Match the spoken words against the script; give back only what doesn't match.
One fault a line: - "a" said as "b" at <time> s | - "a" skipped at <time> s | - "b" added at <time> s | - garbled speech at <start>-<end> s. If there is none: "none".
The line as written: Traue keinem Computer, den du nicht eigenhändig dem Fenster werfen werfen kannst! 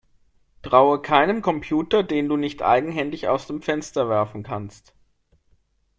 - "aus" added at 3.3 s
- "werfen" skipped at 4.4 s